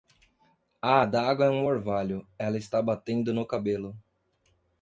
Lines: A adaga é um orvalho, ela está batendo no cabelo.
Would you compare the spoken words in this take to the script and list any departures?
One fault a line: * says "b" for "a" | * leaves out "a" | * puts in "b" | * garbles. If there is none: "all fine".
all fine